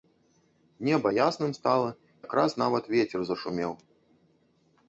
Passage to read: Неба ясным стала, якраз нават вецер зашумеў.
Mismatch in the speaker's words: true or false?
false